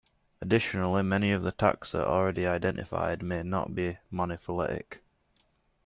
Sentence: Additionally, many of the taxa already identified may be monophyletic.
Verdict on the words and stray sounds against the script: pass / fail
fail